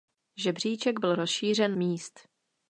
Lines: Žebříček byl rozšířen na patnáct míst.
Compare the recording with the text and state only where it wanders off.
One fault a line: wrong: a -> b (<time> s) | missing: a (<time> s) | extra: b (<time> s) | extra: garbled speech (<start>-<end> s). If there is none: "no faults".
missing: na patnáct (1.7 s)